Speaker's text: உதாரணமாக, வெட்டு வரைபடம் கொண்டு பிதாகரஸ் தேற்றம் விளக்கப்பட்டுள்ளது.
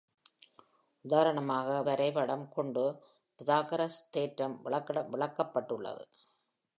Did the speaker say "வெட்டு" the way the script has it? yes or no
no